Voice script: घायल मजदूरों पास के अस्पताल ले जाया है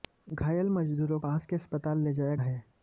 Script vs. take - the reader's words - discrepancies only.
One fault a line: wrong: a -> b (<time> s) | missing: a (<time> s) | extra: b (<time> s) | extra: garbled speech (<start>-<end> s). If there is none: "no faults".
no faults